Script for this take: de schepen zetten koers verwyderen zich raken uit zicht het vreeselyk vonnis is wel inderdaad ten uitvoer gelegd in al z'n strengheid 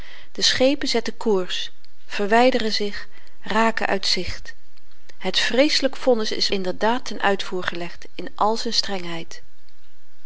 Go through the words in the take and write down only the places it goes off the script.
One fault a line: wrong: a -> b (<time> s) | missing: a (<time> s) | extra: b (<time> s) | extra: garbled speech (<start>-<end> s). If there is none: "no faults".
missing: wel (6.5 s)